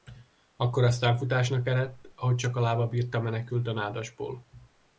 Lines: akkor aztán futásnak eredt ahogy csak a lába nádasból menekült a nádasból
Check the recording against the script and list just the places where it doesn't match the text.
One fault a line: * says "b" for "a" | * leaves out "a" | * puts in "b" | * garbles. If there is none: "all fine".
* says "bírta" for "nádasból"